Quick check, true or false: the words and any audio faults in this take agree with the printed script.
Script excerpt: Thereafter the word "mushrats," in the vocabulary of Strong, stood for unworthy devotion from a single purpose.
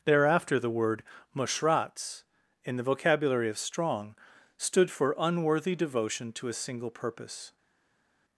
false